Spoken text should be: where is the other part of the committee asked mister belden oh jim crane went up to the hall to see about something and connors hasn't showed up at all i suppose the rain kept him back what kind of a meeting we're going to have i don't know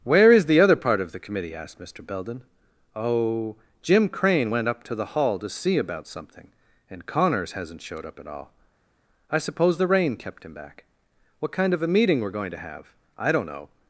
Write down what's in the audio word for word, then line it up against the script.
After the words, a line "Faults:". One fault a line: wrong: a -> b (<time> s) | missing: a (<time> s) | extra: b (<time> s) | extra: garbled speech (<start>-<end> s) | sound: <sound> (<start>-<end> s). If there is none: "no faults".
where is the other part of the committee asked mister belden oh jim crane went up to the hall to see about something and connors hasn't showed up at all i suppose the rain kept him back what kind of a meeting we're going to have i don't know
Faults:
no faults